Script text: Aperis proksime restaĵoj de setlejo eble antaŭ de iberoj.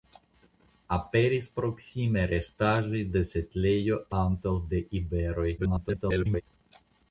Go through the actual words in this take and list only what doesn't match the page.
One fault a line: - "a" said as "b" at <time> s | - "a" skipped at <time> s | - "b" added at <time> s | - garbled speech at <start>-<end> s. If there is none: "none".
- "eble" skipped at 4.0 s
- garbled speech at 5.6-6.4 s